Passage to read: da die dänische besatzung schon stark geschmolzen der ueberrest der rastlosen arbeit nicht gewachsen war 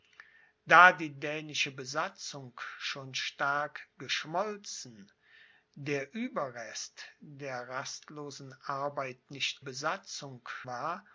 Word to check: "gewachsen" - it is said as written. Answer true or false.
false